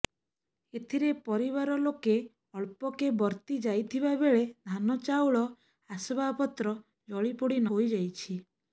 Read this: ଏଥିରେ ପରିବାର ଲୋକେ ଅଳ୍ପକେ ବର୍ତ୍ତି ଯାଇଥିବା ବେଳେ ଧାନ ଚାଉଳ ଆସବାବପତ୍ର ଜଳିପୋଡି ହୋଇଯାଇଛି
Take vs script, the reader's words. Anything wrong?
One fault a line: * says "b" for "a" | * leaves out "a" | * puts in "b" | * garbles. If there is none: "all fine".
all fine